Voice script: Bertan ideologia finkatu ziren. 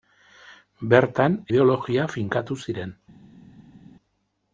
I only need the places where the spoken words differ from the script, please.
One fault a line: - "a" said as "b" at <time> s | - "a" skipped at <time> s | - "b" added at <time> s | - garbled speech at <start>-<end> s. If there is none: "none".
none